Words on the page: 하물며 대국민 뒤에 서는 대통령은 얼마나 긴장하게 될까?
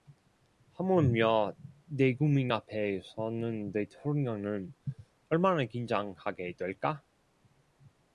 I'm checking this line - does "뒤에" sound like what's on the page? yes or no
no